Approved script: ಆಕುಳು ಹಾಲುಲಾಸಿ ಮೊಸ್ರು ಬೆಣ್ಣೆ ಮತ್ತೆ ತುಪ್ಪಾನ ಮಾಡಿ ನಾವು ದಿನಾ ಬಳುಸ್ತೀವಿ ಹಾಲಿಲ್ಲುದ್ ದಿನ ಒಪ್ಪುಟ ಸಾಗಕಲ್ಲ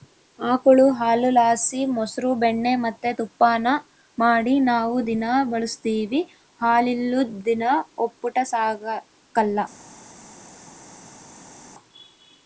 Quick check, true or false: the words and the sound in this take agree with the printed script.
true